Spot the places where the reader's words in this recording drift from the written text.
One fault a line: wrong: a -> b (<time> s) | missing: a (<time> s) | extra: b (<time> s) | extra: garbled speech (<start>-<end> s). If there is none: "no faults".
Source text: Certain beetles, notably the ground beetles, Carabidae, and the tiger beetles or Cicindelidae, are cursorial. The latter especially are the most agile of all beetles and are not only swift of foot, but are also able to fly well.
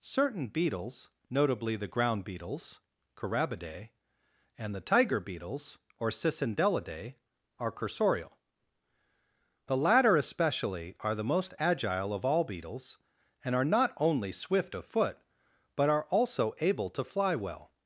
no faults